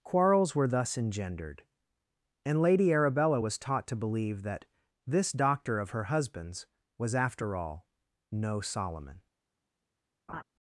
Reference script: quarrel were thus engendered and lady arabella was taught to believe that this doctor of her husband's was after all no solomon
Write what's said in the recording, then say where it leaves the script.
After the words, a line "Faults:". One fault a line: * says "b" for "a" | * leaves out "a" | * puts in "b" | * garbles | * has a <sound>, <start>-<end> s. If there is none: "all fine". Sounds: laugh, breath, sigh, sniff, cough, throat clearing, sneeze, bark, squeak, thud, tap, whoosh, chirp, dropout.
quarrels were thus engendered and lady arabella was taught to believe that this doctor of her husband's was after all no solomon
Faults:
* says "quarrels" for "quarrel"
* has a laugh, 10.3-10.4 s